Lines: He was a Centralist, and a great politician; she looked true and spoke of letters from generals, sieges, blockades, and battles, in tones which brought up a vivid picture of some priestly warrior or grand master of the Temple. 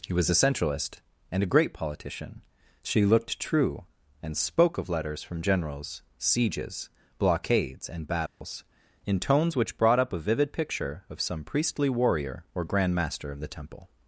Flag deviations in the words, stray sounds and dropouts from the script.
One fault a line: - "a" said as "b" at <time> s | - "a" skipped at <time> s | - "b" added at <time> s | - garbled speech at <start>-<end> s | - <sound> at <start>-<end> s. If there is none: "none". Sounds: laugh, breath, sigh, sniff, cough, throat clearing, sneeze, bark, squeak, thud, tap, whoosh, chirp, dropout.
- dropout at 8.3-8.4 s